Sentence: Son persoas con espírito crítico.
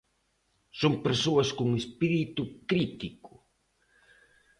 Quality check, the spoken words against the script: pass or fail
pass